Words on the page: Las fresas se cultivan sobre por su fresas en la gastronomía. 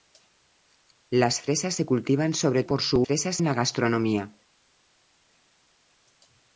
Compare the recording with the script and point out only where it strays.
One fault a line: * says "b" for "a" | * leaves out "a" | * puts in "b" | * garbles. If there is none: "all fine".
all fine